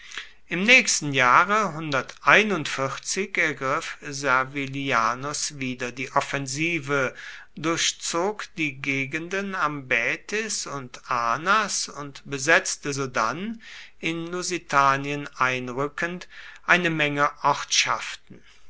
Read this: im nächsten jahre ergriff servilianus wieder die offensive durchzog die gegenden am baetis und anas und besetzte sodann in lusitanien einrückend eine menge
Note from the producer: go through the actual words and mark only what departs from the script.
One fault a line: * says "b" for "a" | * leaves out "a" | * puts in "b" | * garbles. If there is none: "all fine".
all fine